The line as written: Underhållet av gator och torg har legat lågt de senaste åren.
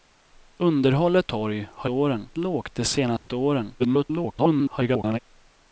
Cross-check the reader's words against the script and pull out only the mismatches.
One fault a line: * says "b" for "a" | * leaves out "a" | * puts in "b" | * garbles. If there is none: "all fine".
* leaves out "av gator och"
* says "åren" for "legat"
* garbles